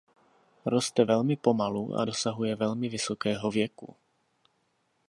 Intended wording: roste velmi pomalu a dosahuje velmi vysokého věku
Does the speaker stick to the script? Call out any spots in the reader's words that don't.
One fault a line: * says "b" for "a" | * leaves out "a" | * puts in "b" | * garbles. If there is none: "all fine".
all fine